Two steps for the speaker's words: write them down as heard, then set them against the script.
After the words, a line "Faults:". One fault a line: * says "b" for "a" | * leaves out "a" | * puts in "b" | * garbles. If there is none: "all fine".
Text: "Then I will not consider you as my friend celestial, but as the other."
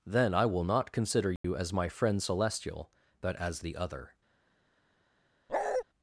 "Then I will not consider you as my friend celestial, but as the other."
Faults:
all fine